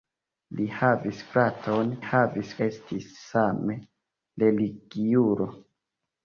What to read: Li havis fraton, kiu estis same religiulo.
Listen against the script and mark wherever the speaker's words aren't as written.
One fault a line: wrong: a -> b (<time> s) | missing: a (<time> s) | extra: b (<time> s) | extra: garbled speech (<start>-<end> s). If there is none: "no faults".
wrong: kiu -> havis (2.1 s)